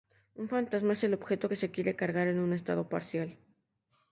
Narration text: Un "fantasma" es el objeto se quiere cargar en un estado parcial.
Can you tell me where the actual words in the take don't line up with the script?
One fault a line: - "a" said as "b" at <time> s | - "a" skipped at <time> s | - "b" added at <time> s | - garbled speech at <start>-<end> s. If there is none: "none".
- "que" added at 1.5 s